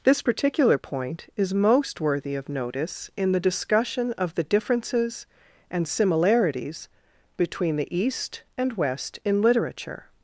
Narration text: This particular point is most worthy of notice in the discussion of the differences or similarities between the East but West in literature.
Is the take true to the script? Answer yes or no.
no